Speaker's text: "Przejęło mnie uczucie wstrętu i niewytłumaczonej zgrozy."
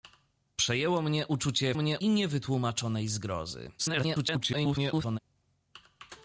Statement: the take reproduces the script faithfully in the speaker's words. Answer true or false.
false